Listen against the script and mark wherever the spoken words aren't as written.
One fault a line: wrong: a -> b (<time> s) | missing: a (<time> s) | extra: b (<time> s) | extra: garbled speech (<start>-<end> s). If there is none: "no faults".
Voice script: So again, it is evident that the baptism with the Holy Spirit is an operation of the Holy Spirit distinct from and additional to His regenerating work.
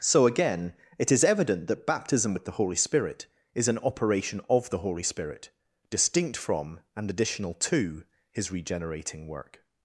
missing: the (1.9 s)